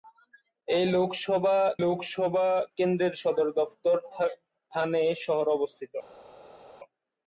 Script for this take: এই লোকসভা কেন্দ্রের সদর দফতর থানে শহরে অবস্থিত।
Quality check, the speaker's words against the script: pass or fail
fail